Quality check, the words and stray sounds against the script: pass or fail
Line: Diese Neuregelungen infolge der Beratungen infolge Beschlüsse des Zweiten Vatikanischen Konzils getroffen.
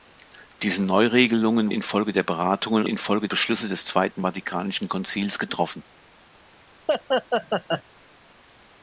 fail